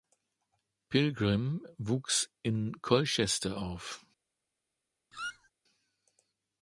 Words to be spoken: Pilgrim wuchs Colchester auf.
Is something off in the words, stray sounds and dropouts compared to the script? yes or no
yes